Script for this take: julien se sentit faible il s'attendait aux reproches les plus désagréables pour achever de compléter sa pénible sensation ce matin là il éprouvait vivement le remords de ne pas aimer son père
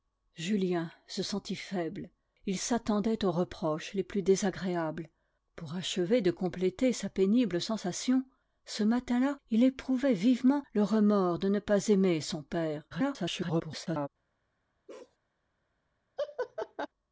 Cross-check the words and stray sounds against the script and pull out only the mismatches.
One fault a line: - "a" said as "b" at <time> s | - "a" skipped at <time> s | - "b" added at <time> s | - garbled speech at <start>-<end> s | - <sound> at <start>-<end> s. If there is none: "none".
- garbled speech at 12.9-14.1 s
- bark at 14.9-15.2 s
- laugh at 16.2-16.9 s